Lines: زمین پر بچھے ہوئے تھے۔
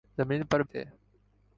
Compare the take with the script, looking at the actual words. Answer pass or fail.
fail